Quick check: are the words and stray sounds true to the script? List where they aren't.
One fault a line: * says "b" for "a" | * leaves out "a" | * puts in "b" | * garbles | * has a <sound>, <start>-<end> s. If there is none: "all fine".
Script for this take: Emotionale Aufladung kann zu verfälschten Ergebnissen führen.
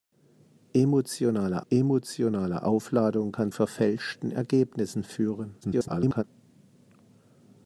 * puts in "emotionale"
* leaves out "zu"
* garbles